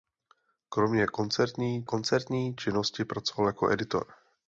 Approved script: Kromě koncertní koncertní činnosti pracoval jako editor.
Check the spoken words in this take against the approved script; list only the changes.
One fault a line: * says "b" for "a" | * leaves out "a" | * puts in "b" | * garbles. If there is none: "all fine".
all fine